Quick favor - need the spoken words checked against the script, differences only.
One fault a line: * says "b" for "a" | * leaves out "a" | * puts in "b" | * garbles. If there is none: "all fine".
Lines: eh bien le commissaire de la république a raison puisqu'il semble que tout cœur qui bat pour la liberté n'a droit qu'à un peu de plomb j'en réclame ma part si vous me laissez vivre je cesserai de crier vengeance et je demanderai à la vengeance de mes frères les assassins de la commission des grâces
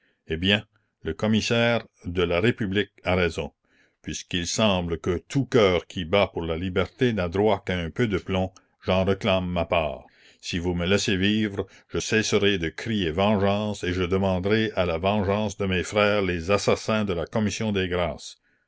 all fine